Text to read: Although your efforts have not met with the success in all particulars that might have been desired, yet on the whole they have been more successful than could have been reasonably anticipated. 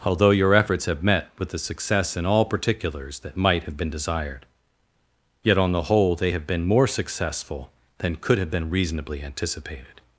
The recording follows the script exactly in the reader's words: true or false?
false